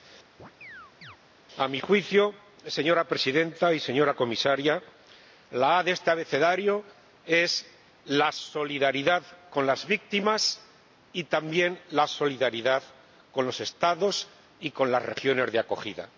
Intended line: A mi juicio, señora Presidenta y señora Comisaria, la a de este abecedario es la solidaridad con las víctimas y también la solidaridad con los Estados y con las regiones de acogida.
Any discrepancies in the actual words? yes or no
no